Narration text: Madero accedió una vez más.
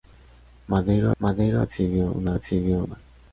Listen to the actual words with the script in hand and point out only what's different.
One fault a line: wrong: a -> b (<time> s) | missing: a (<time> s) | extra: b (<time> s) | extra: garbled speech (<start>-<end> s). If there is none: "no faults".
extra: madero (1.2 s)
wrong: vez -> accedió (2.3 s)